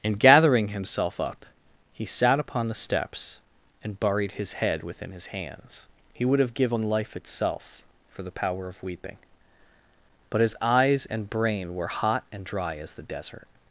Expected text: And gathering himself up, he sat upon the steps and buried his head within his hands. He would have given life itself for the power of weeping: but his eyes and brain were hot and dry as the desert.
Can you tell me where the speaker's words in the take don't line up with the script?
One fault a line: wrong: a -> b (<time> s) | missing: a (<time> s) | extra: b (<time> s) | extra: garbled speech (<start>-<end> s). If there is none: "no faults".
no faults